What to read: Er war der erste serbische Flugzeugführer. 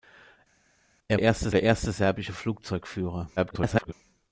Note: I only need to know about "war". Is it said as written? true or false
false